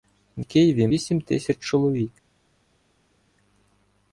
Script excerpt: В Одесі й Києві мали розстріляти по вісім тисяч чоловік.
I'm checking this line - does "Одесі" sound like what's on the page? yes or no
no